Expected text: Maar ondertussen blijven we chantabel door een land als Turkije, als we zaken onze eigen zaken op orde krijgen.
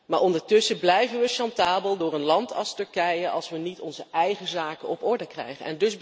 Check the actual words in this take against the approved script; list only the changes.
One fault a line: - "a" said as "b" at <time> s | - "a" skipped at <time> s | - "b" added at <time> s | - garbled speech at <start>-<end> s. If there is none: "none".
- "zaken" said as "niet" at 3.6 s